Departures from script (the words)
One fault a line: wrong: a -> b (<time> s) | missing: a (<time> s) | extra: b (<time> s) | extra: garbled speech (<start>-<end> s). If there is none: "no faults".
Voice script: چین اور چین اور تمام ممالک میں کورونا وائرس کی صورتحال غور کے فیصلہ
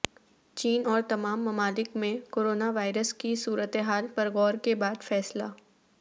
missing: چین اور (1.0 s)
extra: پر (4.1 s)
extra: بعد (4.7 s)